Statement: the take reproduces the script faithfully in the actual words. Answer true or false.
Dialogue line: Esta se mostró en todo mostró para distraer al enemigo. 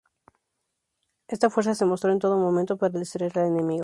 false